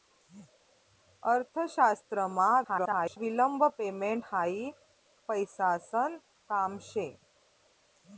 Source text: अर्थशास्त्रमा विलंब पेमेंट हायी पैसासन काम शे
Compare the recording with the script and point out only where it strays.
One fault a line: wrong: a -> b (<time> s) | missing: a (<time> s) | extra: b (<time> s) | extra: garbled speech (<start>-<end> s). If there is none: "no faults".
extra: garbled speech (2.6-3.2 s)